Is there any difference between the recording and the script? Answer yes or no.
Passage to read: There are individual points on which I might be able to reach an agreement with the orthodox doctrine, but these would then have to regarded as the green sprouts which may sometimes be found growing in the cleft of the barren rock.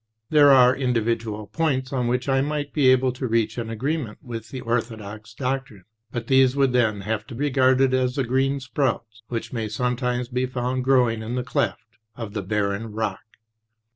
no